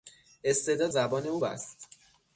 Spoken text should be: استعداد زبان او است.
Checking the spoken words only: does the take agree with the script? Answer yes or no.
yes